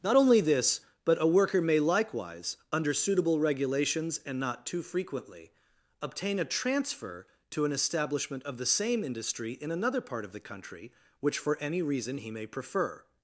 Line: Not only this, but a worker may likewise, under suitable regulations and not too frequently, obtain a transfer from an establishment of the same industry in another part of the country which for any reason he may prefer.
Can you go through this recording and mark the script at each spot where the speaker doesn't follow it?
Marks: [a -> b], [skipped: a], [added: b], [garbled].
Not only this, but a worker may likewise, under suitable regulations and not too frequently, obtain a transfer [from -> to] an establishment of the same industry in another part of the country which for any reason he may prefer.